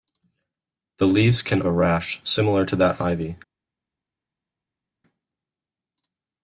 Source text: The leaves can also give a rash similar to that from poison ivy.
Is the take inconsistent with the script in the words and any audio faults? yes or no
yes